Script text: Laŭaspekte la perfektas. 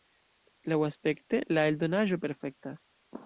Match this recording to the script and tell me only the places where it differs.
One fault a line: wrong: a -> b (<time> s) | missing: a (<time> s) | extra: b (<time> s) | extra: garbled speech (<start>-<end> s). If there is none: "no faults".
extra: eldonaĵo (1.7 s)